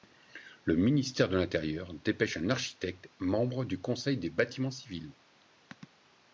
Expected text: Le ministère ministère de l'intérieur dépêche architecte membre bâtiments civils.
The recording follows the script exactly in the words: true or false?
false